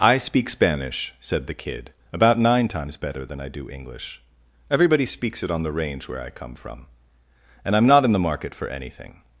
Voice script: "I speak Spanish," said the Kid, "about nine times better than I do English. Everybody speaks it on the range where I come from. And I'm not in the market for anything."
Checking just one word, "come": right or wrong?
right